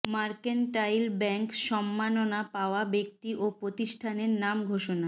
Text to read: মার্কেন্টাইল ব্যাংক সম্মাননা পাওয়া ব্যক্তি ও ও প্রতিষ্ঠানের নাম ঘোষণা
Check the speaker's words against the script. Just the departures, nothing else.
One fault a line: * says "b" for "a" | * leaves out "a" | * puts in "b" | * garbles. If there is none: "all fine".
* leaves out "ও"